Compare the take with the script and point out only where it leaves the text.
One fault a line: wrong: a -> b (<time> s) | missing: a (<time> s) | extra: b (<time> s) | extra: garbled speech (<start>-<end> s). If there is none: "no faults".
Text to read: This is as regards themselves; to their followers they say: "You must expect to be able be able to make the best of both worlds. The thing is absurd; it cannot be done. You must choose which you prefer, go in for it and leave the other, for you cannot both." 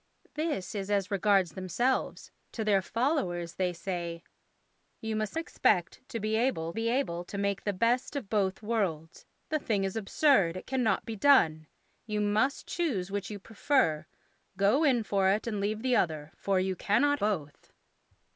no faults